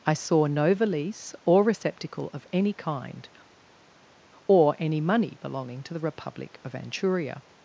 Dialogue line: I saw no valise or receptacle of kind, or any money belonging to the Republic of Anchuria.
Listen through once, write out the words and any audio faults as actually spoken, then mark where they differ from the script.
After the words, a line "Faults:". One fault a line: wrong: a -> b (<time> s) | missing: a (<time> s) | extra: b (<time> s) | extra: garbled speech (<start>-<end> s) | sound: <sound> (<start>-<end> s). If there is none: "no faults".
I saw no valise or receptacle of any kind, or any money belonging to the Republic of Anchuria.
Faults:
extra: any (2.5 s)